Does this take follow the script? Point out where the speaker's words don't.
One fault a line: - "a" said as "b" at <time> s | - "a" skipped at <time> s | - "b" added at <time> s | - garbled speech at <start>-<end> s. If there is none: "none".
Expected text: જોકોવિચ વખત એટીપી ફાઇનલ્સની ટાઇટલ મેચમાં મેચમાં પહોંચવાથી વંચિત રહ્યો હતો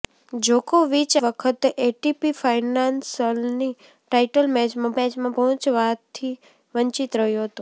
none